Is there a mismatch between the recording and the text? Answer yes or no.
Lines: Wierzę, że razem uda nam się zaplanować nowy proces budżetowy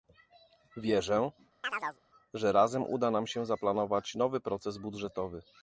no